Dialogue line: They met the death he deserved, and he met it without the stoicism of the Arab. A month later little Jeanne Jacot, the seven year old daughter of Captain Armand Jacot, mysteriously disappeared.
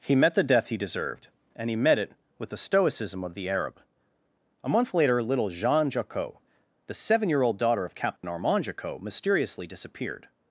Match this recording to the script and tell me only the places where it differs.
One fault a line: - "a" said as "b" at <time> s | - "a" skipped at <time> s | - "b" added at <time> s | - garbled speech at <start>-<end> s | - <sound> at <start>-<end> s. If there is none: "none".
- "They" said as "He" at 0.0 s
- "without" said as "with" at 2.4 s
- dropout at 8.2-8.2 s